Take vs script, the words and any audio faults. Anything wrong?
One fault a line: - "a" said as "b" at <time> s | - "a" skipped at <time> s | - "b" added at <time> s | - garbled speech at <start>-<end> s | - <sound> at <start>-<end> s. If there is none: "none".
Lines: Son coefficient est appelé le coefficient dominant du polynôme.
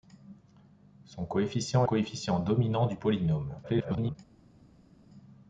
- "est appelé le" skipped at 1.9 s
- garbled speech at 3.6-4.2 s